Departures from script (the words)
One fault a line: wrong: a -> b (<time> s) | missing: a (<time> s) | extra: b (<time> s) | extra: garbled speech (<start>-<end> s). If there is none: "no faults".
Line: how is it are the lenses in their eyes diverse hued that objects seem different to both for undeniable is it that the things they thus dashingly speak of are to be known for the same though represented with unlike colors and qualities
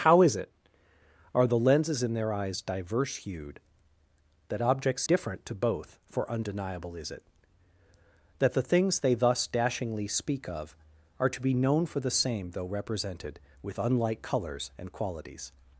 missing: seem (5.0 s)